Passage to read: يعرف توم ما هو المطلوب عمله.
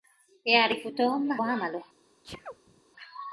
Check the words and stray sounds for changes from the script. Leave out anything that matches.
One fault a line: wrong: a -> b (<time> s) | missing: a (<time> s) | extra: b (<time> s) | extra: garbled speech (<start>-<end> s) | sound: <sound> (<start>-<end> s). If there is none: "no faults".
missing: هو المطلوب (1.4 s)
sound: sneeze (2.2-2.8 s)